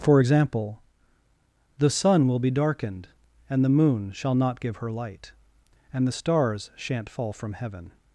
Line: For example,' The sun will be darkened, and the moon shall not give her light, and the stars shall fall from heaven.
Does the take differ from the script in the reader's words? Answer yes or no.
yes